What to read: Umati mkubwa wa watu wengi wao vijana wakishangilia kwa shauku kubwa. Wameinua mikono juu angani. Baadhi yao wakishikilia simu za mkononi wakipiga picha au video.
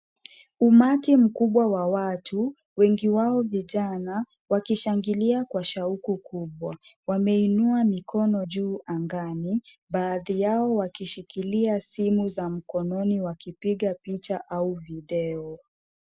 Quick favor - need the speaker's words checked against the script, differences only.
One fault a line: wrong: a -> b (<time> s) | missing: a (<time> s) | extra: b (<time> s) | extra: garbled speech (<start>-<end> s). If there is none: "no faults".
no faults